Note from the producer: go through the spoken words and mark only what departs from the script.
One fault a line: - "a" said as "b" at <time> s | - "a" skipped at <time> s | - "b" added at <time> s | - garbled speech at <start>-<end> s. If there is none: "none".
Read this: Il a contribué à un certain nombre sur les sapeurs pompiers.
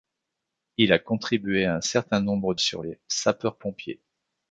none